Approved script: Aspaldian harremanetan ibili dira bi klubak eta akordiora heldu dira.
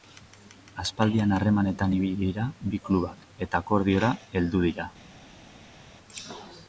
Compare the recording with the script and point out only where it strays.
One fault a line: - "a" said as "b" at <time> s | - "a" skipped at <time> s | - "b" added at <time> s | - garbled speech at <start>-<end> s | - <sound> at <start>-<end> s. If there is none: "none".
none